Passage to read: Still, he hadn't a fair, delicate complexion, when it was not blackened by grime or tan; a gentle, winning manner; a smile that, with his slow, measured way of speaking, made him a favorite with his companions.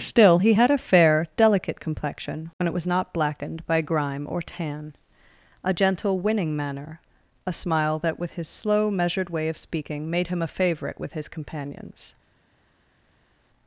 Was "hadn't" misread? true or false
true